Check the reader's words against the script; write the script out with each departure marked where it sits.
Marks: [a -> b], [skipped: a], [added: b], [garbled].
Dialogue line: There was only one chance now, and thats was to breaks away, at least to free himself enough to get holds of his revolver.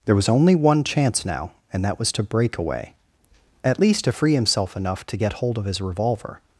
There was only one chance now, and [thats -> that] was to [breaks -> break] away, at least to free himself enough to get [holds -> hold] of his revolver.